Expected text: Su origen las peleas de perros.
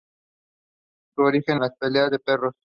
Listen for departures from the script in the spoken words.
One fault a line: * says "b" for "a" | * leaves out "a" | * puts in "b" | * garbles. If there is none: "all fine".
all fine